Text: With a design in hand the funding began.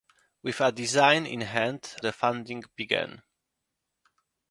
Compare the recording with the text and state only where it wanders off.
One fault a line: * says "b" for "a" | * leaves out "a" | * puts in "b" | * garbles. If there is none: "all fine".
all fine